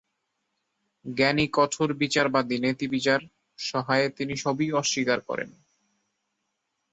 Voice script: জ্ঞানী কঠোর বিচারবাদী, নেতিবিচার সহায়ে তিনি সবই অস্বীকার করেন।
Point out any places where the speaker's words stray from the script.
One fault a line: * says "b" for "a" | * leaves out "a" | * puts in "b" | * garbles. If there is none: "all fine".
all fine